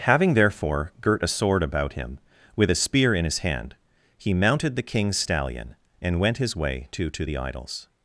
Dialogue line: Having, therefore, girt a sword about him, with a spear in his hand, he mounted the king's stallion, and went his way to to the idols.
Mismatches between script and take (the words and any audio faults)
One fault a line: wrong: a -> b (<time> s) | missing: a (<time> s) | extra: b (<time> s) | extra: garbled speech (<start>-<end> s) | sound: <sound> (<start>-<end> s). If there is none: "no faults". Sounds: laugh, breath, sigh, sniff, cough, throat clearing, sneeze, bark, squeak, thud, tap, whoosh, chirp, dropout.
no faults